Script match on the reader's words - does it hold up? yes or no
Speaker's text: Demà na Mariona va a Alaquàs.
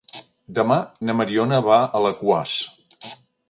yes